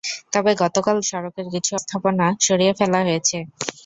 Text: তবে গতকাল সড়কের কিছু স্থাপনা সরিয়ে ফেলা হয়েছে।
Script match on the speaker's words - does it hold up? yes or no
yes